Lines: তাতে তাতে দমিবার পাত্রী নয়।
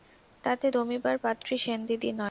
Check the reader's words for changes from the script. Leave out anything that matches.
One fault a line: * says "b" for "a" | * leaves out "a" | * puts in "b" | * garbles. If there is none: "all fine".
* leaves out "তাতে"
* puts in "সেনদিদি"